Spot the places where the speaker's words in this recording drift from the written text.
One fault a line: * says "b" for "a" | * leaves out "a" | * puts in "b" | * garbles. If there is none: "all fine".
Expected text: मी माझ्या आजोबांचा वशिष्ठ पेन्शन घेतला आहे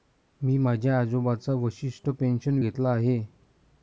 all fine